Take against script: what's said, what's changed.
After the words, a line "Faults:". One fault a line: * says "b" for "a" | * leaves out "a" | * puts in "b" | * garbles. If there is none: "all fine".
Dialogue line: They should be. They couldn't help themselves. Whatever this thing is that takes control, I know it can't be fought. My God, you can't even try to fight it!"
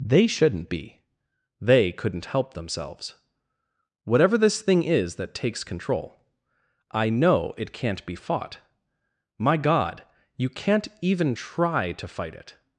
They shouldn't be. They couldn't help themselves. Whatever this thing is that takes control, I know it can't be fought. My God, you can't even try to fight it!"
Faults:
* says "shouldn't" for "should"